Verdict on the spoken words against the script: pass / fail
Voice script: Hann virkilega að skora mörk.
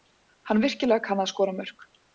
fail